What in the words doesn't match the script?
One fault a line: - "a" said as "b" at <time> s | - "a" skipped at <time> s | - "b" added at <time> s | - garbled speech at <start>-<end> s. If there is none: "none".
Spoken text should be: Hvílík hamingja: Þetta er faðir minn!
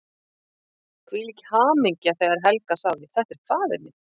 - "þegar Helga sagði" added at 2.2 s